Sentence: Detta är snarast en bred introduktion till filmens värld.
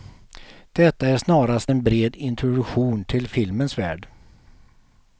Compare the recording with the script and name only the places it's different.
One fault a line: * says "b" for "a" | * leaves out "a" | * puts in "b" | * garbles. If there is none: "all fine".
all fine